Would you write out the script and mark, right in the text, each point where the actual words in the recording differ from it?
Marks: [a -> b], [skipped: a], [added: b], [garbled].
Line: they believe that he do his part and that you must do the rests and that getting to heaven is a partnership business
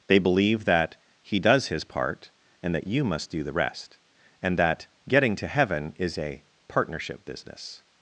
they believe that he [do -> does] his part and that you must do the [rests -> rest] and that getting to heaven is a partnership business